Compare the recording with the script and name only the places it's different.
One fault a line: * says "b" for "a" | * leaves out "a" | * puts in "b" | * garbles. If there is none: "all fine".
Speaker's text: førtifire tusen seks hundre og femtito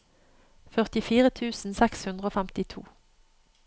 all fine